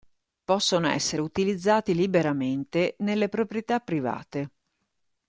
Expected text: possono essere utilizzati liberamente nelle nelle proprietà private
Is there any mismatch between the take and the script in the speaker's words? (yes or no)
yes